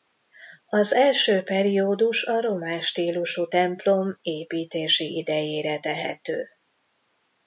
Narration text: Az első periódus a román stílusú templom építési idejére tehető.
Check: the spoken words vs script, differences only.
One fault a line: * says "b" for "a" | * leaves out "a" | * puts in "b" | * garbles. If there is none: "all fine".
all fine